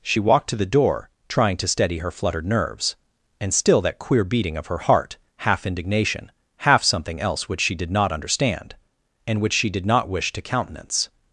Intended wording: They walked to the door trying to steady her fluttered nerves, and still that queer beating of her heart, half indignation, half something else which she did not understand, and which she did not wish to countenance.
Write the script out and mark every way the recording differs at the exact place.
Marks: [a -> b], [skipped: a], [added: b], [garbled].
[They -> She] walked to the door trying to steady her fluttered nerves, and still that queer beating of her heart, half indignation, half something else which she did not understand, and which she did not wish to countenance.